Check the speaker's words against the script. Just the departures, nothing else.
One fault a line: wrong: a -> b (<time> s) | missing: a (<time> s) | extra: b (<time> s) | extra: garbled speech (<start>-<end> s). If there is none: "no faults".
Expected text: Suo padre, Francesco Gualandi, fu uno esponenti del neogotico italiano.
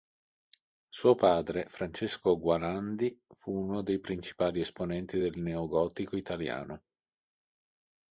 extra: dei principali (3.8 s)